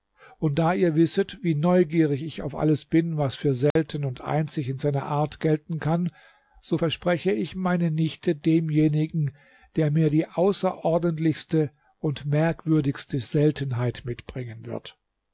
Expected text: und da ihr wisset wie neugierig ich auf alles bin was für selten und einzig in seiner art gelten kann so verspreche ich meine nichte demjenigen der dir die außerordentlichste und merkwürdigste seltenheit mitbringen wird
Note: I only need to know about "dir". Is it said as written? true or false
false